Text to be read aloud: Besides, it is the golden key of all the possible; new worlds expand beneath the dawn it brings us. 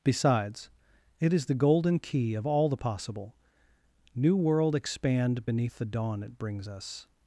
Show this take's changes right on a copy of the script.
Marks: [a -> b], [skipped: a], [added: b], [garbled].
Besides, it is the golden key of all the possible; new [worlds -> world] expand beneath the dawn it brings us.